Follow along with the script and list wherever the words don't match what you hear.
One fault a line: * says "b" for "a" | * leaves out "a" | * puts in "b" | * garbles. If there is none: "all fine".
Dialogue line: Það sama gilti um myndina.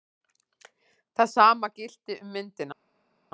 all fine